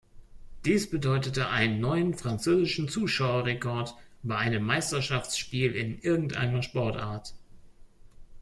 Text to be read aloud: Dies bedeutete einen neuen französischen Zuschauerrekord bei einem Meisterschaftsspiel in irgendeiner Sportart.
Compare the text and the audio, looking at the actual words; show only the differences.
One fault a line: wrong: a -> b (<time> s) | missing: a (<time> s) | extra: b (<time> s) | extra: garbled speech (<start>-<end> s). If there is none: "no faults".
no faults